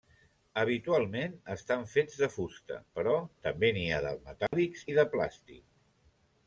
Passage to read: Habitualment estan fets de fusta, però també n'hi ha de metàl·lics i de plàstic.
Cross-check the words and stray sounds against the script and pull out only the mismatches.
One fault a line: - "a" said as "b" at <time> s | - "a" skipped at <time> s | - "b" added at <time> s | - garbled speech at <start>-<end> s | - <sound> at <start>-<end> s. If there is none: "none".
- dropout at 4.5-4.5 s